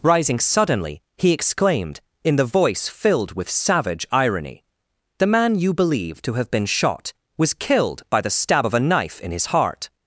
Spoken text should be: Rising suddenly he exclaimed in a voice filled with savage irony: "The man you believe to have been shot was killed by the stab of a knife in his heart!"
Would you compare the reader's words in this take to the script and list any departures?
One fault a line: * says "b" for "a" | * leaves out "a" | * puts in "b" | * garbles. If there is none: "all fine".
* says "the" for "a"